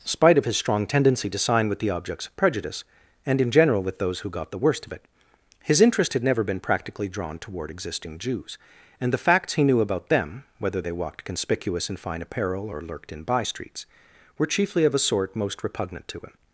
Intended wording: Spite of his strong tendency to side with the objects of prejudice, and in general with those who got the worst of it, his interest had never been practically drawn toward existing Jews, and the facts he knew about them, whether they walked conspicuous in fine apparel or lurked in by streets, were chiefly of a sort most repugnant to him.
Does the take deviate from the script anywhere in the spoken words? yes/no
yes